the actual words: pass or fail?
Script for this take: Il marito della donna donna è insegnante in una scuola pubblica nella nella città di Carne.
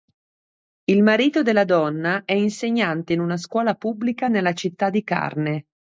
fail